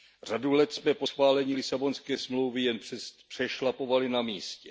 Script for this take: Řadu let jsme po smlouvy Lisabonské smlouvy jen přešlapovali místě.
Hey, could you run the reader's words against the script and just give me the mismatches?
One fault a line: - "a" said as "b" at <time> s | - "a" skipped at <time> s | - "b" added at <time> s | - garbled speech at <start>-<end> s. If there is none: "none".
- "smlouvy" said as "schválení" at 1.0 s
- "na" added at 4.1 s